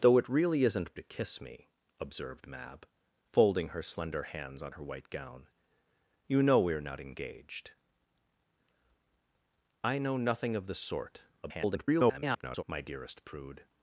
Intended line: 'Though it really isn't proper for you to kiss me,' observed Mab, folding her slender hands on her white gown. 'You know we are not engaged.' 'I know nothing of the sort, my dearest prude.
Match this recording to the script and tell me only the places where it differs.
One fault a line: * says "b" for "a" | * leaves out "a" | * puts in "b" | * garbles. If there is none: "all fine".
* leaves out "proper for you"
* garbles